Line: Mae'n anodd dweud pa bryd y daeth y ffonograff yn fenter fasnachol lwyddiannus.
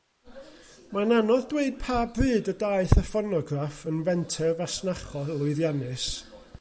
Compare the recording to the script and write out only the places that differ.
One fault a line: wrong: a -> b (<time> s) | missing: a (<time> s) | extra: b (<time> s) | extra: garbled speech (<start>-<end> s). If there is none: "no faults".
no faults